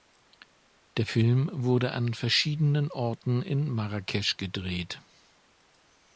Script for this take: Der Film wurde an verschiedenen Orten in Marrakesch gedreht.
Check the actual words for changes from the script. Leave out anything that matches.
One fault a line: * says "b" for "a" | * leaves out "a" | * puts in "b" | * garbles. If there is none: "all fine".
all fine